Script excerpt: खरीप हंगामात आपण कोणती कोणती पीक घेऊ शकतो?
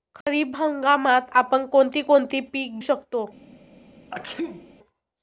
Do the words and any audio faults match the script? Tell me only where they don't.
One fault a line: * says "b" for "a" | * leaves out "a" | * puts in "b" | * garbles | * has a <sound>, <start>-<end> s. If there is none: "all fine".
* has a dropout, 0.2-0.3 s
* leaves out "घेऊ"
* has a sneeze, 4.1-4.7 s